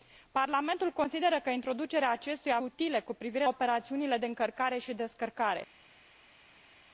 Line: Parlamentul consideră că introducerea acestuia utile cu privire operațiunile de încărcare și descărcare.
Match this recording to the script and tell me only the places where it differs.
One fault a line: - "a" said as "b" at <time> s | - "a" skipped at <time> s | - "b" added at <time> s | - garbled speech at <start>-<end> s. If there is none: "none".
none